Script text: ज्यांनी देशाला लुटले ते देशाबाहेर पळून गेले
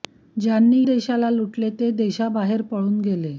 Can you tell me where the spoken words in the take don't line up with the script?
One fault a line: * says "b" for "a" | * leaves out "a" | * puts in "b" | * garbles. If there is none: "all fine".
all fine